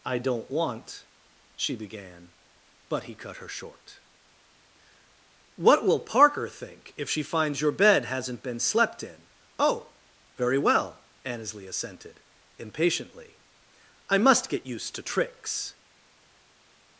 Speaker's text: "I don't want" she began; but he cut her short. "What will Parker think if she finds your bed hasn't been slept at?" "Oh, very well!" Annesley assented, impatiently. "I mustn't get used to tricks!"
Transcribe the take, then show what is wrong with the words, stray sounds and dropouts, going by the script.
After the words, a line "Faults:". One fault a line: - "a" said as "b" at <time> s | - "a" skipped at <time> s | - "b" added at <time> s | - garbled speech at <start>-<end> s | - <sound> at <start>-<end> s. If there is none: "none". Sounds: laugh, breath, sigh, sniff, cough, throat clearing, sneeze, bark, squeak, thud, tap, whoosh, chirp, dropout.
"I don't want" she began; but he cut her short. "What will Parker think if she finds your bed hasn't been slept in?" "Oh, very well!" Annesley assented, impatiently. "I must get used to tricks!"
Faults:
- "at" said as "in" at 9.0 s
- "mustn't" said as "must" at 14.2 s